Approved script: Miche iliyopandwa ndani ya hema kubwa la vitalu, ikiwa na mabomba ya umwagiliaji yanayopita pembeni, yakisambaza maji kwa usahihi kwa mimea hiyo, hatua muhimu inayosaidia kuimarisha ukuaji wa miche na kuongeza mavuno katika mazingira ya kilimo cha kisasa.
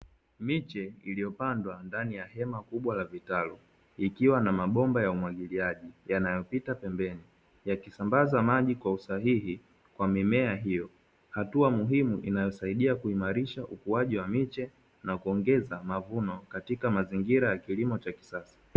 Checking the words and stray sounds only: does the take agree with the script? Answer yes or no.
yes